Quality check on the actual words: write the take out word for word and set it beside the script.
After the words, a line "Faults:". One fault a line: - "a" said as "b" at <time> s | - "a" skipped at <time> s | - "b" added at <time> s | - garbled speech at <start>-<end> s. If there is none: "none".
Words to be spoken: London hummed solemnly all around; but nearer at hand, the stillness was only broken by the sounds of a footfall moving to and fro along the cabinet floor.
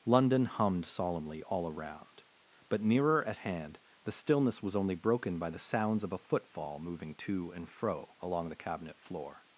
London hummed solemnly all around; but nearer at hand, the stillness was only broken by the sounds of a footfall moving to and fro along the cabinet floor.
Faults:
none